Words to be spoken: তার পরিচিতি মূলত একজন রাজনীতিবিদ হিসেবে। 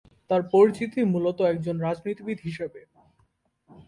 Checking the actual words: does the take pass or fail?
pass